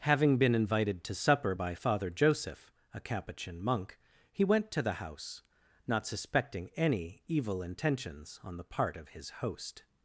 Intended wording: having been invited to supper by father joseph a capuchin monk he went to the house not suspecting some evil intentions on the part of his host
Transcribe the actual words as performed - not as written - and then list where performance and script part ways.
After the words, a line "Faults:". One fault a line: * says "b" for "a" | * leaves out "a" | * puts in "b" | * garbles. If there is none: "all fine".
having been invited to supper by father joseph a capuchin monk he went to the house not suspecting any evil intentions on the part of his host
Faults:
* says "any" for "some"